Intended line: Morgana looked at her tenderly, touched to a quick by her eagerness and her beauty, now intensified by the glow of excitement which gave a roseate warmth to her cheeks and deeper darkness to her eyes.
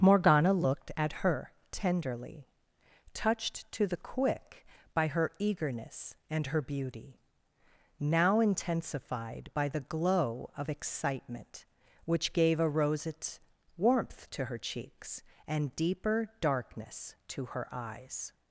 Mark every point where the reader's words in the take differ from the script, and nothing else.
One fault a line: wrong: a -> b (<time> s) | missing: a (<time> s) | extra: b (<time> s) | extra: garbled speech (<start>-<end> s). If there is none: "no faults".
wrong: a -> the (3.8 s)